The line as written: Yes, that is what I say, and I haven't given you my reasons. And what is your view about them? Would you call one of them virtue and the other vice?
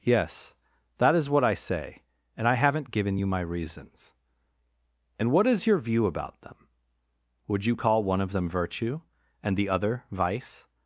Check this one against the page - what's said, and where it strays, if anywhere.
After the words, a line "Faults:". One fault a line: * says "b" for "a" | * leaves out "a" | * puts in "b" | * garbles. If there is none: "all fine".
Yes, that is what I say, and I haven't given you my reasons. And what is your view about them? Would you call one of them virtue and the other vice?
Faults:
all fine